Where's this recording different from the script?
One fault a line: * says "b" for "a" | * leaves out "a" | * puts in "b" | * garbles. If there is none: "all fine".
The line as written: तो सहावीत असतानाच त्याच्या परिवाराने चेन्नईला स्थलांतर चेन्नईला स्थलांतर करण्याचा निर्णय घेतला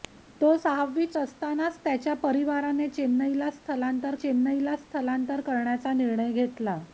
all fine